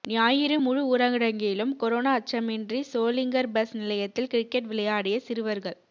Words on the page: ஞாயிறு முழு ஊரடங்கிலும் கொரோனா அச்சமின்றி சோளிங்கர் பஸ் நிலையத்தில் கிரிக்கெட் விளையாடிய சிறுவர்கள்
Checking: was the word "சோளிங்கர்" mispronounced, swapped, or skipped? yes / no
no